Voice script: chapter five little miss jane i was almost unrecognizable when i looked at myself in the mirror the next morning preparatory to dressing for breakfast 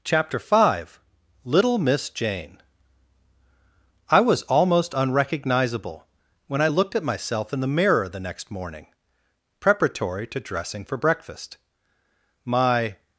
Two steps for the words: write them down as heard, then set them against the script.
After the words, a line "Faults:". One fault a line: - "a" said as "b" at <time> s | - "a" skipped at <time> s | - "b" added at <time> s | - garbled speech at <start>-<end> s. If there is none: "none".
chapter five little miss jane i was almost unrecognizable when i looked at myself in the mirror the next morning preparatory to dressing for breakfast my
Faults:
- "my" added at 12.5 s